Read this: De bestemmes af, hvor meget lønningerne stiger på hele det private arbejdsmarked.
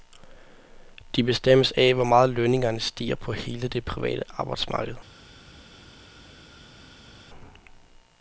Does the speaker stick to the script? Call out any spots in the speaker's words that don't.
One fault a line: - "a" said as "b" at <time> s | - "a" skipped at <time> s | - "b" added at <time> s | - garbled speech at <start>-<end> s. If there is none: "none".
none